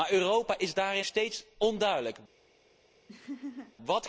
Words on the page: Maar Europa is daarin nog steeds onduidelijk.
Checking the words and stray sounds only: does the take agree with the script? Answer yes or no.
no